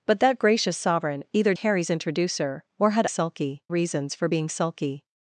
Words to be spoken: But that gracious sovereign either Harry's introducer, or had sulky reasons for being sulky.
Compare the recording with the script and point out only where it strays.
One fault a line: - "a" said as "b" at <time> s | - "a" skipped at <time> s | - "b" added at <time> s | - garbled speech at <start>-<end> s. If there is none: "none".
none